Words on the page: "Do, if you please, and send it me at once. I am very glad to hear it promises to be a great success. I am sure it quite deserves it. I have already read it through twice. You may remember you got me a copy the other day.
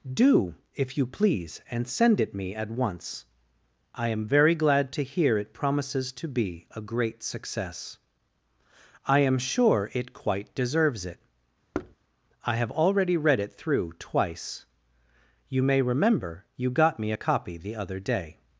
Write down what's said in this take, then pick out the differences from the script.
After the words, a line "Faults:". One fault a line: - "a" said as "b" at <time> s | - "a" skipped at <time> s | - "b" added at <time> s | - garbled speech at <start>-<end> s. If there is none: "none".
"Do, if you please, and send it me at once. I am very glad to hear it promises to be a great success. I am sure it quite deserves it. I have already read it through twice. You may remember you got me a copy the other day.
Faults:
none